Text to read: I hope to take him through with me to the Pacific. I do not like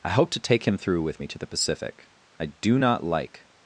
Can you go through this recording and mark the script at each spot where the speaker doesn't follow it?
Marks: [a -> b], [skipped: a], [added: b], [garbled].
I hope to take him through with me to the Pacific. I do not like